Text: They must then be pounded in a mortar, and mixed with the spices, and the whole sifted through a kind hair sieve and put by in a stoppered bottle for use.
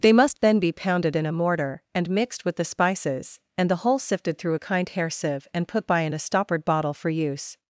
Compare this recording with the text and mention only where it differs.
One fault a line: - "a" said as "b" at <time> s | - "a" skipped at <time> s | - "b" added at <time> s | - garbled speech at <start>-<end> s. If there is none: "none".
none